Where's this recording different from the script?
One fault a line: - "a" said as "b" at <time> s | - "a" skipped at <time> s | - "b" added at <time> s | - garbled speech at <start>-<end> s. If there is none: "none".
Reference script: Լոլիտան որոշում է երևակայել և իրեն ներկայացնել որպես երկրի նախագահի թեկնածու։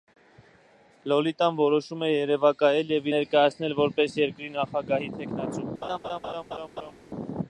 - "իրեն" skipped at 3.1 s